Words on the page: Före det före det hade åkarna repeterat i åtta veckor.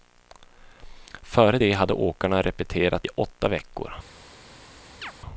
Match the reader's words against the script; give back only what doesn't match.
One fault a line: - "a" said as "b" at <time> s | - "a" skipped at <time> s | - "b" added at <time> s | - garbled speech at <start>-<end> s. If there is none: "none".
- "före det" skipped at 1.7 s